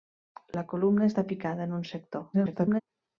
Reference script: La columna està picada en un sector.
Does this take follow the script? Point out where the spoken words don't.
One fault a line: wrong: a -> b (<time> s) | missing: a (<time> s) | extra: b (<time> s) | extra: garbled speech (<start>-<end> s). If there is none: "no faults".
extra: garbled speech (2.3-2.8 s)